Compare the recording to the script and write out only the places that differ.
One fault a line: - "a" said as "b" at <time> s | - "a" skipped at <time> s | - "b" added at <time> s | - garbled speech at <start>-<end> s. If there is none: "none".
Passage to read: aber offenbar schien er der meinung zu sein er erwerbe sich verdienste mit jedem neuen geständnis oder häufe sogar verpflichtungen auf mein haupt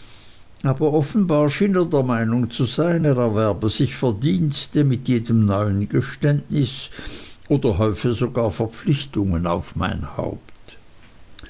none